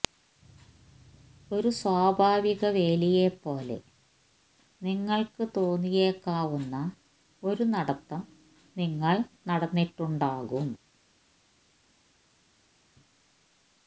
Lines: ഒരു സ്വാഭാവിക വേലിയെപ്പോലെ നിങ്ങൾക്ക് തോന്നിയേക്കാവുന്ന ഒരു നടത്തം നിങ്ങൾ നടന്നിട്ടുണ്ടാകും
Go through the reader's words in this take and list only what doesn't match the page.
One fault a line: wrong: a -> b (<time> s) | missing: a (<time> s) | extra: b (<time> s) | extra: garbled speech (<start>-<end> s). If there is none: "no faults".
no faults